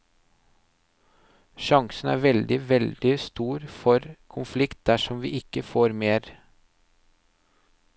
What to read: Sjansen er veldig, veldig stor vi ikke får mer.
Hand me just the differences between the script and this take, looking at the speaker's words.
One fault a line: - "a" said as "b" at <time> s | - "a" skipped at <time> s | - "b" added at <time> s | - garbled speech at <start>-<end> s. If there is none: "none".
- "for konflikt dersom" added at 3.8 s